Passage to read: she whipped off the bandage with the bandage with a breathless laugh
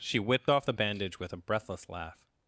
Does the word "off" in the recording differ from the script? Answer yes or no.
no